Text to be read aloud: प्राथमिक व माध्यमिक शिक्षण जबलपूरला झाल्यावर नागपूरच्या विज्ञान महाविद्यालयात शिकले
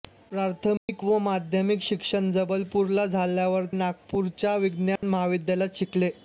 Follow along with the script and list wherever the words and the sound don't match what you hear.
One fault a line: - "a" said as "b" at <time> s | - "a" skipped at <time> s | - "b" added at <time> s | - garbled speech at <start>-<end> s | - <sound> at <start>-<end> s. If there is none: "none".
- dropout at 0.8-0.9 s
- dropout at 5.0-5.0 s